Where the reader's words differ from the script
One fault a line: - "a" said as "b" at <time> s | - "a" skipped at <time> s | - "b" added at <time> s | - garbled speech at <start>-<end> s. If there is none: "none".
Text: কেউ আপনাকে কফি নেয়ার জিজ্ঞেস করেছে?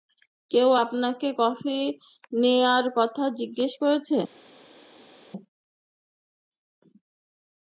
- "কথা" added at 3.0 s